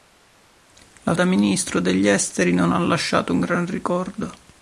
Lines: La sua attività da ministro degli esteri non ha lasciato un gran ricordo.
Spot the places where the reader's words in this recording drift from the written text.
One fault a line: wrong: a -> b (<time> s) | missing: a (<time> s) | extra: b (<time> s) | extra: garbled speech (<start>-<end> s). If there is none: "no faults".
missing: sua attività (1.1 s)